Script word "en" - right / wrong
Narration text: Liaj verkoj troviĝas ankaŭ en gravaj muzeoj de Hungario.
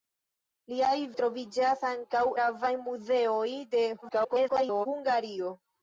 wrong